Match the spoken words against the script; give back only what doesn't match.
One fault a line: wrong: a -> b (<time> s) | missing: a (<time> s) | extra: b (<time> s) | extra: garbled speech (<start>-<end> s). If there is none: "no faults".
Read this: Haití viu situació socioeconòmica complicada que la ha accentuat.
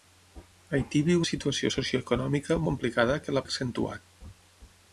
no faults